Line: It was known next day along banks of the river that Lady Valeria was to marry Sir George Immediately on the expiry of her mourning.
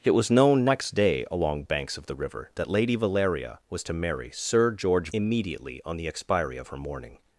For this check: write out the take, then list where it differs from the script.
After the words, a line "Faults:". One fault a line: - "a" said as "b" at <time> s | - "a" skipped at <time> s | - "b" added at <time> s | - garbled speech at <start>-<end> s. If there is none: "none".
It was known next day along banks of the river that Lady Valeria was to marry Sir George Immediately on the expiry of her mourning.
Faults:
none